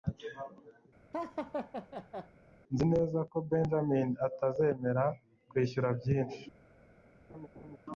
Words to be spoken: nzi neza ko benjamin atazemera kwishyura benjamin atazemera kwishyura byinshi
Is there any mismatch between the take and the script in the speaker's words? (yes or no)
yes